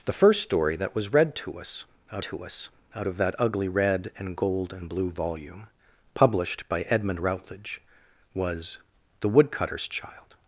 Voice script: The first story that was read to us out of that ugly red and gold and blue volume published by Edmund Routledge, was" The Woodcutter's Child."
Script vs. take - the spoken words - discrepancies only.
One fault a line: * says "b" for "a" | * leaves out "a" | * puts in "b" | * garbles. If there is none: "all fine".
* puts in "to us out"